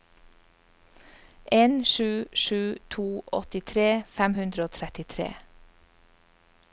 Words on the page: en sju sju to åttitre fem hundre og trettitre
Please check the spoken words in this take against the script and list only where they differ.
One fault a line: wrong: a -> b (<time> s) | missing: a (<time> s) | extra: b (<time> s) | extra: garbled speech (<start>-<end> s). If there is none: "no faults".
no faults